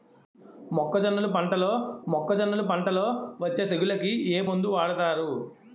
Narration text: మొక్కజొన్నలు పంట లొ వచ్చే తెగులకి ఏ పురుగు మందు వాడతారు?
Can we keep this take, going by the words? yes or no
no